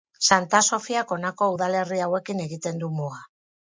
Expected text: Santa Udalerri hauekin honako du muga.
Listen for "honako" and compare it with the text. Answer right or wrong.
wrong